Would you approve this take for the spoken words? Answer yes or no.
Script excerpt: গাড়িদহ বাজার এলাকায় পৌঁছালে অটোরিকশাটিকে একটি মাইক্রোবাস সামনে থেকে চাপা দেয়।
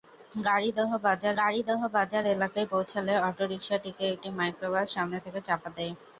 no